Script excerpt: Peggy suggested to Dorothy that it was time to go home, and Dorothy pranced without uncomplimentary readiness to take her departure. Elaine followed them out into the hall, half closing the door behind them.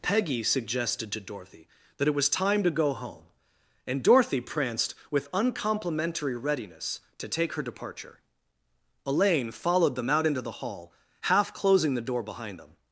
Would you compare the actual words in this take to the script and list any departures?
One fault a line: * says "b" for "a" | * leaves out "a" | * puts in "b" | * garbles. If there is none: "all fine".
* says "with" for "without"